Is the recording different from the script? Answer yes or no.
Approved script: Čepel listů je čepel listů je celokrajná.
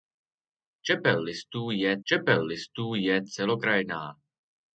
no